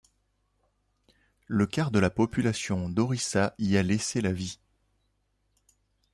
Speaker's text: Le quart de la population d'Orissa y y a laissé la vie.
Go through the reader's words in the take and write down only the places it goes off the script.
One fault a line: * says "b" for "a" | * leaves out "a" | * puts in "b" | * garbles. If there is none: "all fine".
* leaves out "y"